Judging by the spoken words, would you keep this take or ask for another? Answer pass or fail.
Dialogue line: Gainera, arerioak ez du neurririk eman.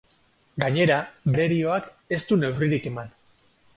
pass